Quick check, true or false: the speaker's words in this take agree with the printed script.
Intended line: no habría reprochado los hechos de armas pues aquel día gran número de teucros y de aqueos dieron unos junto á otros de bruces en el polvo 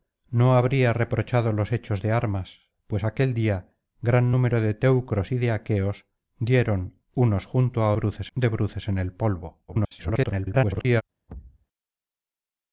false